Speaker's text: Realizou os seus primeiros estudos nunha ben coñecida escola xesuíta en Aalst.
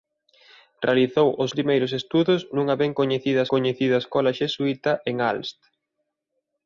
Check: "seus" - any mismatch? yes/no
yes